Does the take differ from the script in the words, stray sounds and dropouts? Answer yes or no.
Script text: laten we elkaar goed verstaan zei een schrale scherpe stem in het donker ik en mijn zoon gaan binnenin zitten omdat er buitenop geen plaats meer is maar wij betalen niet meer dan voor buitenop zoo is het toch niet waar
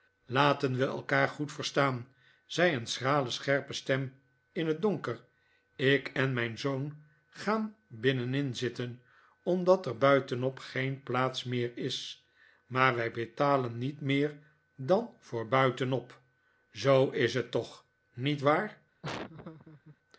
yes